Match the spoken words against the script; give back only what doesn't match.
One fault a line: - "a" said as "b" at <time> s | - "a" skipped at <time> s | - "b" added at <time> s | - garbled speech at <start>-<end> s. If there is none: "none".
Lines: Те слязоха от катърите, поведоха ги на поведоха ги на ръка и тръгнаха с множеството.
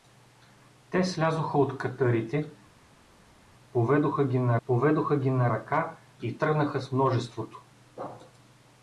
none